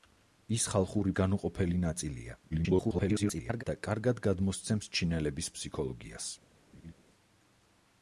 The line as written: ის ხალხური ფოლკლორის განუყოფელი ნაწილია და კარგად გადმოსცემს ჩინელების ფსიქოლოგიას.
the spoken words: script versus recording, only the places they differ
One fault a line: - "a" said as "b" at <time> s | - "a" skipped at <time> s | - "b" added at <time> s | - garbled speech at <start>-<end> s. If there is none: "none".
- "ფოლკლორის" skipped at 1.1 s
- garbled speech at 2.5-3.6 s